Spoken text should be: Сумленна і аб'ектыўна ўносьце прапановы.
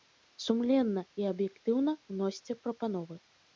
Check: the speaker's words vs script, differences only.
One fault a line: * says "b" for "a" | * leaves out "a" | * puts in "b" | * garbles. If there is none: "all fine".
all fine